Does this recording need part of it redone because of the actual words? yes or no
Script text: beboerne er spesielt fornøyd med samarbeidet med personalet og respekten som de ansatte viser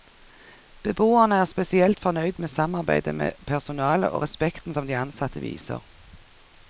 no